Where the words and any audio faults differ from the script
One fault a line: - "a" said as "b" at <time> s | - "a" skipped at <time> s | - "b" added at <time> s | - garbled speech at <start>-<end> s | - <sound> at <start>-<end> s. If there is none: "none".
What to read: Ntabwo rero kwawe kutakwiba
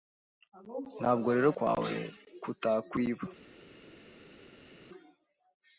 none